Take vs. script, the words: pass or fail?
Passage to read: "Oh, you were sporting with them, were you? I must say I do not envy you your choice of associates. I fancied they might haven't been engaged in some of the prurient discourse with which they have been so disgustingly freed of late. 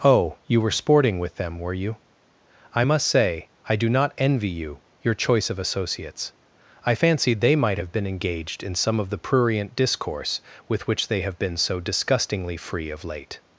fail